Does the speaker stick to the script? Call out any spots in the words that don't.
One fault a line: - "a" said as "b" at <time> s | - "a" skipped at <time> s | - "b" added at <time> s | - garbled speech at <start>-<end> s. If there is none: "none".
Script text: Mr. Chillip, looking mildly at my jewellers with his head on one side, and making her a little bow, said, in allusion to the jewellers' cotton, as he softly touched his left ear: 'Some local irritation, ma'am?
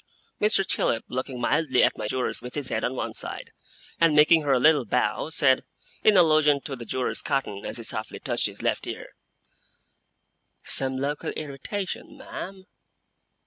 none